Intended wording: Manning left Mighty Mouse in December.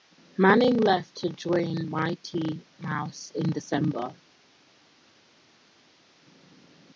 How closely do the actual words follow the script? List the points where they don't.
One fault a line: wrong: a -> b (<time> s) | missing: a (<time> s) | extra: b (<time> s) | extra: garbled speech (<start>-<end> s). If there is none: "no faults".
extra: to join (1.2 s)